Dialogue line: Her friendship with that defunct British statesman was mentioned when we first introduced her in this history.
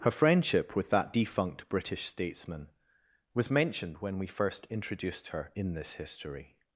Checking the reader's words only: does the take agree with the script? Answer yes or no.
yes